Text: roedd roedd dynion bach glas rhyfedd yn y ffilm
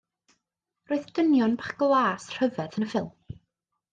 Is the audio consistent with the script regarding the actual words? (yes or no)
no